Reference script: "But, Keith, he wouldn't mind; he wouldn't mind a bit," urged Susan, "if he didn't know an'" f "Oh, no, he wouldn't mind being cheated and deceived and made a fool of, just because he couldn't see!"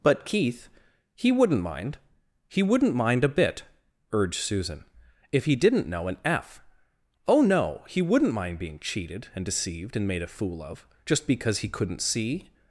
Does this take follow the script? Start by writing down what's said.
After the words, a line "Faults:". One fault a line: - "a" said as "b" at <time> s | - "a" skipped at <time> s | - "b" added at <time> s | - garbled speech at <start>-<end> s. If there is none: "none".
"But, Keith, he wouldn't mind; he wouldn't mind a bit," urged Susan, "if he didn't know an'" f "Oh, no, he wouldn't mind being cheated and deceived and made a fool of, just because he couldn't see!"
Faults:
none